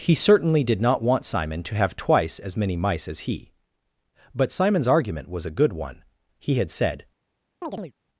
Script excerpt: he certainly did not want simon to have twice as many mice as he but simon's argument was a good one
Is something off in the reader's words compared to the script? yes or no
yes